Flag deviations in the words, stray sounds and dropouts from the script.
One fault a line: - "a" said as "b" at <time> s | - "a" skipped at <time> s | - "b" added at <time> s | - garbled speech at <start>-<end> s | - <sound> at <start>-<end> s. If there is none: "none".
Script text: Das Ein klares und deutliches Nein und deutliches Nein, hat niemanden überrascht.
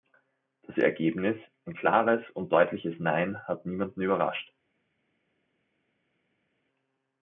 - "Ergebnis" added at 0.8 s
- "und deutliches Nein" skipped at 3.4 s